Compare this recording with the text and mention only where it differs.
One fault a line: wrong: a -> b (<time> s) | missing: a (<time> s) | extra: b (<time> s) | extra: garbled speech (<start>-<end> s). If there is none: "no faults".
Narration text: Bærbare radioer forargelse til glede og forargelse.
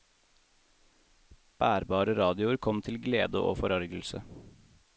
wrong: forargelse -> kom (2.6 s)